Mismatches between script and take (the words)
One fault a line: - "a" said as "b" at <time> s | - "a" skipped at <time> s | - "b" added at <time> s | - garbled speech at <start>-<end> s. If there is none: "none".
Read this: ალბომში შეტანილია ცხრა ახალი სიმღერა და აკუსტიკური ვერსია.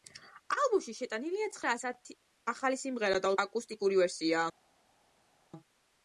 none